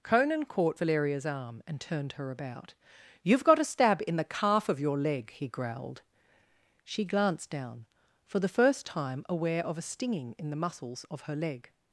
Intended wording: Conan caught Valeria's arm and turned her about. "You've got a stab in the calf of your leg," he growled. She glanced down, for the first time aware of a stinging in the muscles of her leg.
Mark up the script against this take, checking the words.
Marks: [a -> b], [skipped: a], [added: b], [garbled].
Conan caught Valeria's arm and turned her about. "You've got a stab in the calf of your leg," he growled. She glanced down, for the first time aware of a stinging in the muscles of her leg.